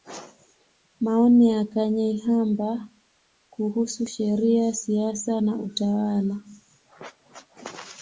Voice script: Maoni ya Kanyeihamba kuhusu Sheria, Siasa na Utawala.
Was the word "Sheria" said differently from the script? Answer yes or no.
no